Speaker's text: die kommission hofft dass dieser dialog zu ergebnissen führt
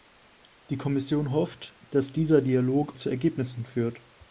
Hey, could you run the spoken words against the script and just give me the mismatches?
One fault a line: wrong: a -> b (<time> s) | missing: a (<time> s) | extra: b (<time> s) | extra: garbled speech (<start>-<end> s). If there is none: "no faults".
no faults